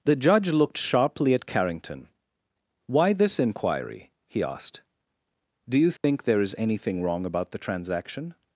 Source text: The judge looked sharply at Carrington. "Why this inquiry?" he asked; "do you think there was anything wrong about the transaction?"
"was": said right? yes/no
no